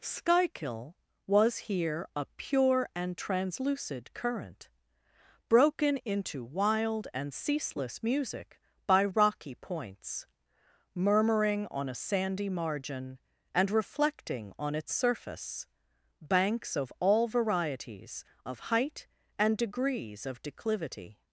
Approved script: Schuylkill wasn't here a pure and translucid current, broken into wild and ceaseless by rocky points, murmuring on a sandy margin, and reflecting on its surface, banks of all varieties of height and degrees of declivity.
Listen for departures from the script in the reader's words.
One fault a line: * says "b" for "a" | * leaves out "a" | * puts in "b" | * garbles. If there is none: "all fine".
* says "was" for "wasn't"
* puts in "music"